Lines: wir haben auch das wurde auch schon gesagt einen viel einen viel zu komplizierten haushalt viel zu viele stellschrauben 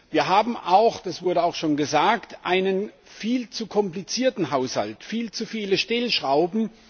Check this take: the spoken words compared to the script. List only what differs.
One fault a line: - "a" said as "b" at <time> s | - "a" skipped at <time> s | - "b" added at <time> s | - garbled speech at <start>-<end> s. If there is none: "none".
- "einen viel" skipped at 3.5 s